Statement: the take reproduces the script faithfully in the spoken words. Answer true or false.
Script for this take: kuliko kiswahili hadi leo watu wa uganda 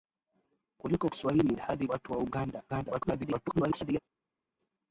false